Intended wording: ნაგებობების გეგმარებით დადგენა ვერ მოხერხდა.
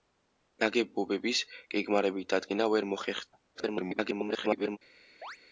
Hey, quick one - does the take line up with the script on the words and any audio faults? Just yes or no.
no